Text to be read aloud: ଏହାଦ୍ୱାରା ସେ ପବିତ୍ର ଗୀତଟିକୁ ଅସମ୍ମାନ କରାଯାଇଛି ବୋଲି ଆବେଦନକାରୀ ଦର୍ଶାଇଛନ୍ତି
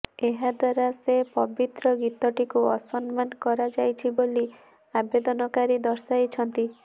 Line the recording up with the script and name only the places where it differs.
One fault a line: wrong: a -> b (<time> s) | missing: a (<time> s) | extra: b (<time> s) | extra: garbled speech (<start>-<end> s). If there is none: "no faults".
no faults